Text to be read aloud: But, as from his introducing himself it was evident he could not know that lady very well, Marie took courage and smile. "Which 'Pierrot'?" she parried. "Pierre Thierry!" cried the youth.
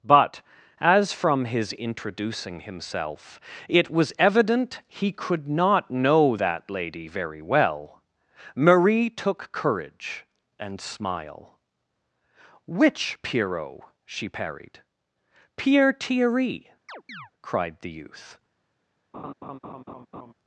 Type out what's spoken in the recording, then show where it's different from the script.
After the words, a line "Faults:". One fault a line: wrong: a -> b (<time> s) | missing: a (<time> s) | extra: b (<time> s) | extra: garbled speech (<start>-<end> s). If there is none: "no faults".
But, as from his introducing himself it was evident he could not know that lady very well, Marie took courage and smile. "Which 'Pierrot'?" she parried. "Pierre Thierry!" cried the youth.
Faults:
no faults